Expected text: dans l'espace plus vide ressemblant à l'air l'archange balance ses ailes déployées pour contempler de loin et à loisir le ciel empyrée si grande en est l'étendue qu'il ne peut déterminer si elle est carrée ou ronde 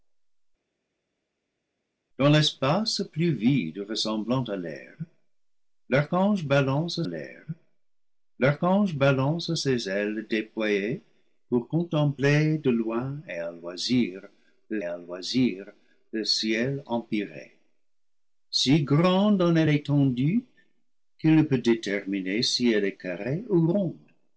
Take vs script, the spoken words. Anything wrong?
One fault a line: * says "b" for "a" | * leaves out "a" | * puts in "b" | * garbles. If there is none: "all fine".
* puts in "l'air l'archange balance"
* puts in "à loisir le"